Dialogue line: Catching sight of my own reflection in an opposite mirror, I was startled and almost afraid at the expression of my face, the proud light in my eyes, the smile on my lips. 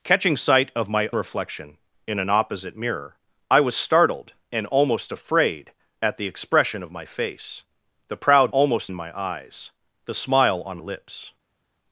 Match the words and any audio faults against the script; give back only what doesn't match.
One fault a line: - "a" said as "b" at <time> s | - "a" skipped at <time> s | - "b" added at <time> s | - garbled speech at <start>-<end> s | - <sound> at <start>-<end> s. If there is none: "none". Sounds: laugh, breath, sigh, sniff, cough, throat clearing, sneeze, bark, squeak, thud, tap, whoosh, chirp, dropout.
- "own" skipped at 1.1 s
- "light" said as "almost" at 8.5 s
- "my" skipped at 10.8 s